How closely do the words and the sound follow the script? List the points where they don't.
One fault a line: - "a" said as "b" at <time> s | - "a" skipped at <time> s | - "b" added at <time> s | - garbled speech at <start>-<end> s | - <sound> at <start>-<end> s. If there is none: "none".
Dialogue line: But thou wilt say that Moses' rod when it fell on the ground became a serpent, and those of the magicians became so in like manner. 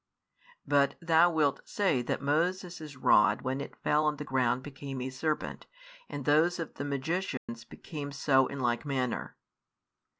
- dropout at 7.4-7.5 s